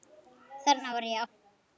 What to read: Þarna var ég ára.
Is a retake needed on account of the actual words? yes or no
no